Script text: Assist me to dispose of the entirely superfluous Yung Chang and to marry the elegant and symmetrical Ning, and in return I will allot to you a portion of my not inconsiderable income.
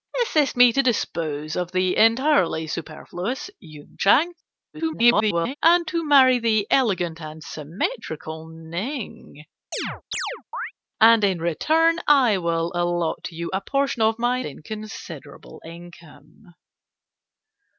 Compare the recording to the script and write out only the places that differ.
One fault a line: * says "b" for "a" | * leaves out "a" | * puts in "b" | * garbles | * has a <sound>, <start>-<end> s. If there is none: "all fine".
* garbles
* has a chirp, 9.7-10.7 s
* leaves out "not"